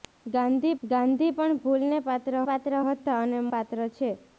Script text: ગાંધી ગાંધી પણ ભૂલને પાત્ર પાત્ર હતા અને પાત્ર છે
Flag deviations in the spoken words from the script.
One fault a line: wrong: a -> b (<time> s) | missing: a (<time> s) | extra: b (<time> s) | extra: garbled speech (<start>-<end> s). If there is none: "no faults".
no faults